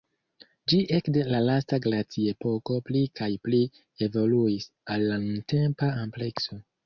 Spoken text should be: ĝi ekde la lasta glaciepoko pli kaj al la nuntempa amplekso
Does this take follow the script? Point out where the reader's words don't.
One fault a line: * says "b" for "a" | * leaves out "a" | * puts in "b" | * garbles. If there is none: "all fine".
* puts in "pli evoluis"